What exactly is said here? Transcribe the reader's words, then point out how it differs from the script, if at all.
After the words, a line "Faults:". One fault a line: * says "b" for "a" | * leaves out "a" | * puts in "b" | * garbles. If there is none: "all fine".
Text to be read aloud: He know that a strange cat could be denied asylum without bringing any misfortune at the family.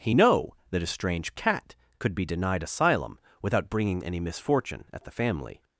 He know that a strange cat could be denied asylum without bringing any misfortune at the family.
Faults:
all fine